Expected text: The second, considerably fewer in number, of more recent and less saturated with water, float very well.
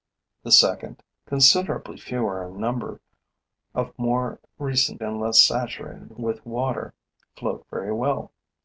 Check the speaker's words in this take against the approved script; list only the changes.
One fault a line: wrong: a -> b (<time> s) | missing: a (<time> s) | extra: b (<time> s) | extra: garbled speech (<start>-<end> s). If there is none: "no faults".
no faults